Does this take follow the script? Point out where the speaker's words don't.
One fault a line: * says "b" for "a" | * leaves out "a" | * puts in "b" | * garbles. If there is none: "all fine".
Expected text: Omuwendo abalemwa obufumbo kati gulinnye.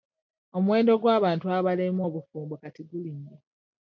* puts in "gw'abantu"